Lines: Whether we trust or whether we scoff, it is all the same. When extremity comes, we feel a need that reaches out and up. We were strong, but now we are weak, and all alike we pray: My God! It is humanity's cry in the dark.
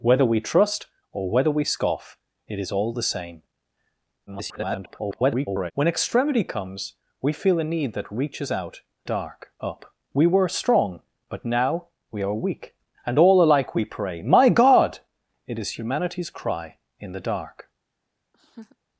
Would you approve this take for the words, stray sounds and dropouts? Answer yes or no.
no